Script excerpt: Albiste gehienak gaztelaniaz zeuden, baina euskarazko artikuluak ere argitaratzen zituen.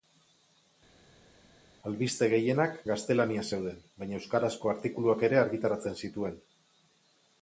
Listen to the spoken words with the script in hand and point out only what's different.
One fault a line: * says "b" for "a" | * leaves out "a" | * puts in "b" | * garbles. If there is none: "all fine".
all fine